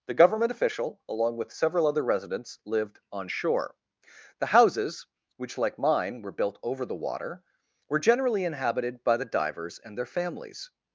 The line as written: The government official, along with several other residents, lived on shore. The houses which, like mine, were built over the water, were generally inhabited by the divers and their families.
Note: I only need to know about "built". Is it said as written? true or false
true